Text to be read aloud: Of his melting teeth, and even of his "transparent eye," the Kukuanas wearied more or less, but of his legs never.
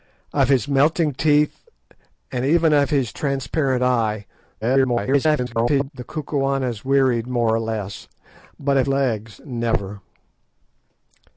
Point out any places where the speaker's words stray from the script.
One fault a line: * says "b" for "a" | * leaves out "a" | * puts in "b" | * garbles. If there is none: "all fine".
* garbles
* leaves out "his"